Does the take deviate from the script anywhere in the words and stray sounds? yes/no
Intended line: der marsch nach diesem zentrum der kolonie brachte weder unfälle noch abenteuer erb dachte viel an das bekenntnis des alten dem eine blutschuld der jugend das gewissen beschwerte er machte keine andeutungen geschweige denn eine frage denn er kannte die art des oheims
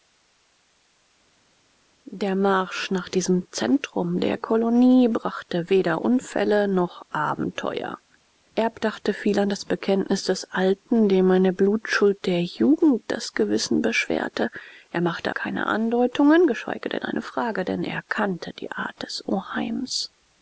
no